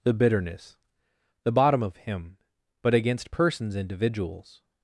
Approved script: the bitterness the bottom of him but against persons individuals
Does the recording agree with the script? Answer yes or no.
yes